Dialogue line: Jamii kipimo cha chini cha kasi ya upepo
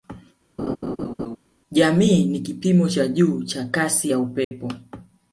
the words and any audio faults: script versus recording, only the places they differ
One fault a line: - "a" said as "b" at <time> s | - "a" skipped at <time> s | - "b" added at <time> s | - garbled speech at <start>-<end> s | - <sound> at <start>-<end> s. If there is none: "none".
- laugh at 0.6-1.4 s
- "ni" added at 2.2 s
- "chini" said as "juu" at 3.1 s
- dropout at 4.4-4.5 s